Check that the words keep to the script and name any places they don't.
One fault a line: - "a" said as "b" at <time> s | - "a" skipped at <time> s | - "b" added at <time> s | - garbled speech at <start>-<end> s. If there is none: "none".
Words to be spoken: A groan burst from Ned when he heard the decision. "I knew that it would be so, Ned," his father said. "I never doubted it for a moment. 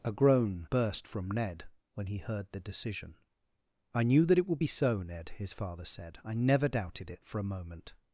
none